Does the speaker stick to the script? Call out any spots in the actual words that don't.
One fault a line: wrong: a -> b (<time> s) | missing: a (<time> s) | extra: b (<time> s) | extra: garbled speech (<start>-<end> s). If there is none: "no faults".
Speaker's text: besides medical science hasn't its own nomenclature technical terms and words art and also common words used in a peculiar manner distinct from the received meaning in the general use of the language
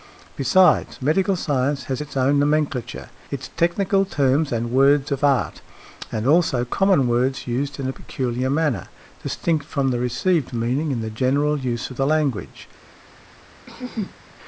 wrong: hasn't -> has (1.8 s)
extra: its (3.3 s)
extra: of (5.1 s)